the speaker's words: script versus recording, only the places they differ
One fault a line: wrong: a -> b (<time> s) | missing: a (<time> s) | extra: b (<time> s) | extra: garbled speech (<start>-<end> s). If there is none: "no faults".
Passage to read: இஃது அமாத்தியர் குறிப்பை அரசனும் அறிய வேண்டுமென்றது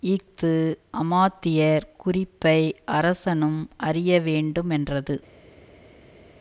no faults